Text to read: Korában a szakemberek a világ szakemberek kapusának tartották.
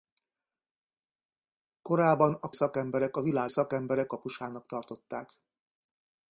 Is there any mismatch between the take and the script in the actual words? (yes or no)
no